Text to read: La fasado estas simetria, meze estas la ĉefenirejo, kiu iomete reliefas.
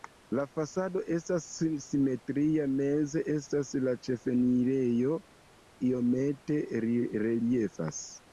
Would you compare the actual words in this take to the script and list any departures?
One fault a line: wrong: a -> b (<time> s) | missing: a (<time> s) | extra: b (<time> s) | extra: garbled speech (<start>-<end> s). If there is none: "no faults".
missing: kiu (5.2 s)